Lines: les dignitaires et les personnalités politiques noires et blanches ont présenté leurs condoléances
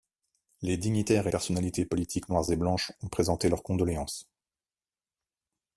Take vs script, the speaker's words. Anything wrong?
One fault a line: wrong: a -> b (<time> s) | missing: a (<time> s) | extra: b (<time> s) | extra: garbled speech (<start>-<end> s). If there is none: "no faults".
missing: les (1.3 s)